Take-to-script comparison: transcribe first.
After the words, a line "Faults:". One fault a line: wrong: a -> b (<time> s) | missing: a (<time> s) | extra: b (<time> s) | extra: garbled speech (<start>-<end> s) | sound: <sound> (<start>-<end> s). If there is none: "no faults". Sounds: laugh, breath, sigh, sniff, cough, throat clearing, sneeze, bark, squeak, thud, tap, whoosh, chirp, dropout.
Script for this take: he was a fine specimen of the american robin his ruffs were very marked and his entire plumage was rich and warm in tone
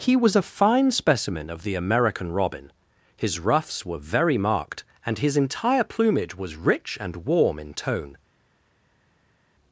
he was a fine specimen of the american robin his ruffs were very marked and his entire plumage was rich and warm in tone
Faults:
no faults